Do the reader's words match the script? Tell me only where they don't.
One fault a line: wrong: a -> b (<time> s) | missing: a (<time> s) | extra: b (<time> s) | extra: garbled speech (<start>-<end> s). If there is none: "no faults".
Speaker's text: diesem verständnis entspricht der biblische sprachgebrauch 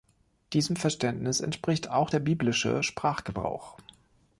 extra: auch (1.9 s)